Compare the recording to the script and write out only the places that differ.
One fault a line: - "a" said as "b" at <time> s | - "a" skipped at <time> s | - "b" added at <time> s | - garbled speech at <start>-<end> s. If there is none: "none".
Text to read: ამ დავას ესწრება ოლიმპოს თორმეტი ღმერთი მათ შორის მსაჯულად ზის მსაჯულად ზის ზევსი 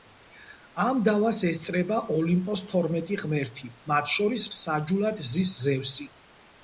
- "მსაჯულად ზის" skipped at 5.6 s